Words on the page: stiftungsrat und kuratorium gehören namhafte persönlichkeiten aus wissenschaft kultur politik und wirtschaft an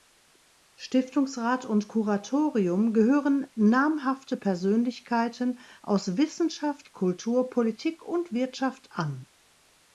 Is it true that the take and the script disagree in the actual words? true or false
false